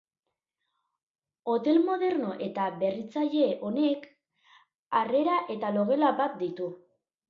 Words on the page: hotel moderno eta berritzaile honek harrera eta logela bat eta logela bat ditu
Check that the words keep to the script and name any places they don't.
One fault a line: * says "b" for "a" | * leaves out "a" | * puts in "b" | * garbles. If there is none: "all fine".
* leaves out "eta logela bat"